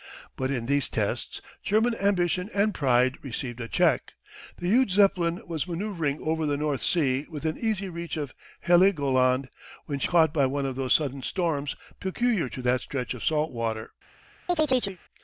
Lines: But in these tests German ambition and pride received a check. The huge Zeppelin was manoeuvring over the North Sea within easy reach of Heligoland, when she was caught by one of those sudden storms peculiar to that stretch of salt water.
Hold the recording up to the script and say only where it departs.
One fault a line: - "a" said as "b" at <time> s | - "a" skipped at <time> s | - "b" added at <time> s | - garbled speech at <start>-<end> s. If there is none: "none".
- "was" skipped at 10.1 s